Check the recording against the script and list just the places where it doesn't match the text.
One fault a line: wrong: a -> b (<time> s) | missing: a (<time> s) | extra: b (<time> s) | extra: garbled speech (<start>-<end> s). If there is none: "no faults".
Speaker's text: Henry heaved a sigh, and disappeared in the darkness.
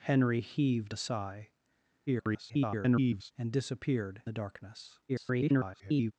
extra: garbled speech (2.1-3.3 s)
missing: in (4.2 s)
extra: garbled speech (5.1-6.1 s)